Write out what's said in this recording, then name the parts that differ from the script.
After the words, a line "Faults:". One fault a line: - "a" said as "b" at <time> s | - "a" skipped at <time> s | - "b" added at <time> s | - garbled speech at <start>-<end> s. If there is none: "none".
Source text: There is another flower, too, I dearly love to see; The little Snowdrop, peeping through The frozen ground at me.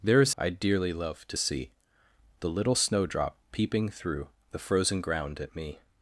There is I dearly love to see; The little Snowdrop, peeping through The frozen ground at me.
Faults:
- "another flower too" skipped at 0.3 s